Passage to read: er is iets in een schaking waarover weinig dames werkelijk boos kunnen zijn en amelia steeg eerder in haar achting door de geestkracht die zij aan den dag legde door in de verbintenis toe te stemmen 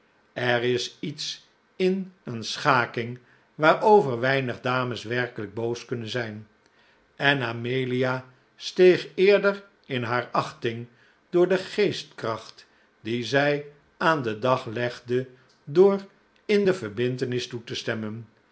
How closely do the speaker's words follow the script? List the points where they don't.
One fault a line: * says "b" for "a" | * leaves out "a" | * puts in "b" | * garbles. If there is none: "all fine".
all fine